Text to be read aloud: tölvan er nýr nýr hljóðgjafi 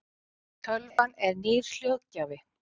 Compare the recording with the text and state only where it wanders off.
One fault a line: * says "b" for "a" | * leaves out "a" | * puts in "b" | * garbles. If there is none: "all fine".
* leaves out "nýr"